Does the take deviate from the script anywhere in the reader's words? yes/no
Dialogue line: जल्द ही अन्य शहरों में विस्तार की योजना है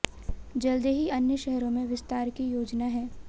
no